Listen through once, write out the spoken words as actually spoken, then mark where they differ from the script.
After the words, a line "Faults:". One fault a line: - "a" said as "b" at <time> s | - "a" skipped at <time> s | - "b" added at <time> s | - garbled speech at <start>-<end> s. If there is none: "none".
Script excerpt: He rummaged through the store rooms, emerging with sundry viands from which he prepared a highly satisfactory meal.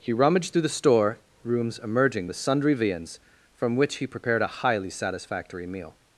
He rummaged through the store rooms, emerging with sundry viands from which he prepared a highly satisfactory meal.
Faults:
none